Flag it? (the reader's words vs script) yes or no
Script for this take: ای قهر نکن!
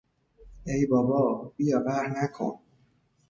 yes